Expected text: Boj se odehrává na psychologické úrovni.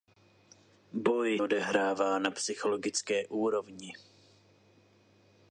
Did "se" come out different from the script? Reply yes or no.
yes